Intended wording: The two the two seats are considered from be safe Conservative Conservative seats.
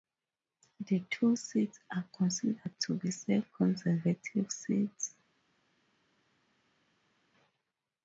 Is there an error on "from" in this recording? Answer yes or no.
yes